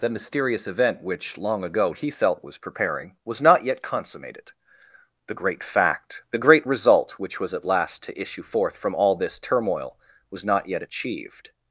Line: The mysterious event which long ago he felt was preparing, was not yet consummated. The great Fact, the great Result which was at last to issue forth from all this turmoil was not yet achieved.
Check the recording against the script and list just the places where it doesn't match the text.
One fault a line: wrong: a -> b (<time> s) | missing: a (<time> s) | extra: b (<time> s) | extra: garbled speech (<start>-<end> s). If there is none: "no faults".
no faults